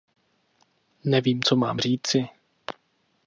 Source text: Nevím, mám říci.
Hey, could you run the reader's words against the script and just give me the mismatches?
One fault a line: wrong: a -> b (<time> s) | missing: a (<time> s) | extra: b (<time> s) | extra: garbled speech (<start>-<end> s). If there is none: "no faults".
extra: co (1.4 s)